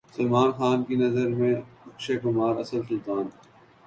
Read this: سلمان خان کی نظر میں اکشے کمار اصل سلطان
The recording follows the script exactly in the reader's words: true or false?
true